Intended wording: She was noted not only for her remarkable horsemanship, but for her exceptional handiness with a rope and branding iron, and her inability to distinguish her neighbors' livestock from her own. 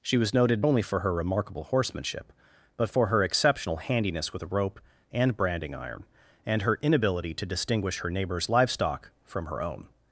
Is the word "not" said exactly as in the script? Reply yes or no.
no